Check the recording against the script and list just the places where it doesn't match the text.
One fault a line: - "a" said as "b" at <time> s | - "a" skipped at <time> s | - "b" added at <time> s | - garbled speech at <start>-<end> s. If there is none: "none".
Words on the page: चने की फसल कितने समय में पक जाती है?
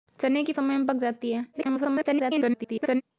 - "फसल कितने" skipped at 0.5 s
- garbled speech at 1.5-3.0 s